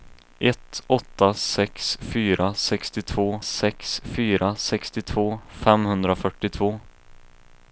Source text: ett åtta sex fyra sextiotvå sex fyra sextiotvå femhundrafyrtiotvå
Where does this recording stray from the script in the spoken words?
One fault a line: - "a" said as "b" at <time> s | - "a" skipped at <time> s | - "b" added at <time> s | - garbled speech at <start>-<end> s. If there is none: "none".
none